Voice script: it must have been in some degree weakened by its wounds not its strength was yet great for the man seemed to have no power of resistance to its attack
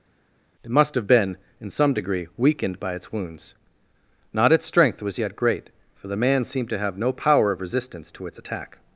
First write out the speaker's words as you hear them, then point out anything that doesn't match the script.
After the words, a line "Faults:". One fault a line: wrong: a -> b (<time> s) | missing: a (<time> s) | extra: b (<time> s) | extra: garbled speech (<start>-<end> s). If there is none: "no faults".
it must have been in some degree weakened by its wounds not its strength was yet great for the man seemed to have no power of resistance to its attack
Faults:
no faults